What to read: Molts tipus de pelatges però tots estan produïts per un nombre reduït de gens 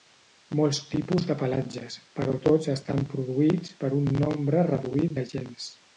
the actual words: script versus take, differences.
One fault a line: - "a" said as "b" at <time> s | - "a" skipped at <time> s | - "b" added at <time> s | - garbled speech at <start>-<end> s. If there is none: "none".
none